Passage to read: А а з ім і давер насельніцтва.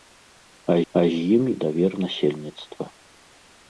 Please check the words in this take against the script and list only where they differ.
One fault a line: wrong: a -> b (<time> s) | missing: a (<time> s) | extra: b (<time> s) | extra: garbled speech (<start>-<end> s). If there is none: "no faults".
no faults